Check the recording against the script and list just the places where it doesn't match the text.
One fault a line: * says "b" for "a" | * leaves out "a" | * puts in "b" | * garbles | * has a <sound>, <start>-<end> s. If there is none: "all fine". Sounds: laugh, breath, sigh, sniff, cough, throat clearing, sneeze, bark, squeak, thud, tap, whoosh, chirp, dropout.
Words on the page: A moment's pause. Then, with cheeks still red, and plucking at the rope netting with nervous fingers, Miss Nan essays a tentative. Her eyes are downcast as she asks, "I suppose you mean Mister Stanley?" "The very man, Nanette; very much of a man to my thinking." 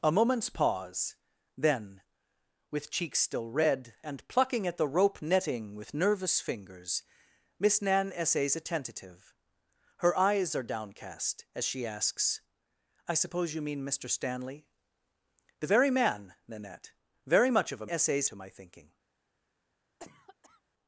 * says "essays" for "man"
* has a cough, 20.0-20.6 s